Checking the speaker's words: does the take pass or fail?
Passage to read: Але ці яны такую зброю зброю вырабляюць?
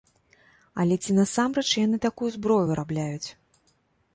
fail